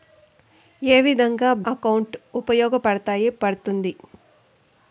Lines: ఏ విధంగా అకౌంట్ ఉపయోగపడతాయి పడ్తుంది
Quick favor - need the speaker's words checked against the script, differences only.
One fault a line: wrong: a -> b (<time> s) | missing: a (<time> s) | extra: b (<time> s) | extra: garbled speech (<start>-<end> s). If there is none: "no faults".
no faults